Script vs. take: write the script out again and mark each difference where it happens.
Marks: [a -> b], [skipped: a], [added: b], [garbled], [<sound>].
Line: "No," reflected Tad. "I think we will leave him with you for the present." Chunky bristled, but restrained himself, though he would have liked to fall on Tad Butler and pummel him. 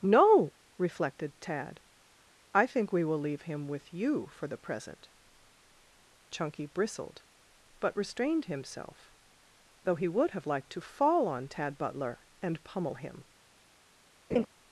"No," reflected Tad. "I think we will leave him with you for the present." Chunky bristled, but restrained himself, though he would have liked to fall on Tad Butler and pummel him. [laugh]